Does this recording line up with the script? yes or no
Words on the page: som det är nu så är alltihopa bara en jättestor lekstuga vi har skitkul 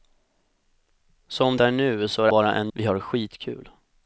no